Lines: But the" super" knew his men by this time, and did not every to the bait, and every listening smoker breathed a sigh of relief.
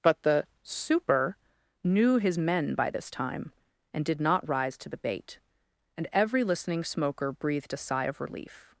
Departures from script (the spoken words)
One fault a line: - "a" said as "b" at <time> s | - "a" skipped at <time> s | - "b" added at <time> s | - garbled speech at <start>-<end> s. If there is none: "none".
- "every" said as "rise" at 4.5 s